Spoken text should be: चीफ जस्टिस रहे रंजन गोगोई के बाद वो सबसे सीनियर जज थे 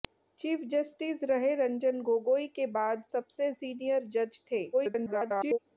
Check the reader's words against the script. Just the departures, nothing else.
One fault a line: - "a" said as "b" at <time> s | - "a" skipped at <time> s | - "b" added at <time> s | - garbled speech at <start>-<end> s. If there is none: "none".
- "वो" skipped at 3.0 s
- garbled speech at 4.7-5.6 s